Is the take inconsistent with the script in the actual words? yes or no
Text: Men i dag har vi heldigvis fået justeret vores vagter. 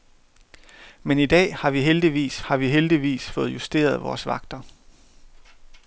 yes